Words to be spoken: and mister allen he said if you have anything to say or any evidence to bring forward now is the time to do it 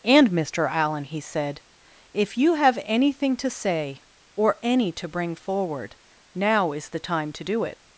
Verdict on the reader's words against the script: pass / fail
fail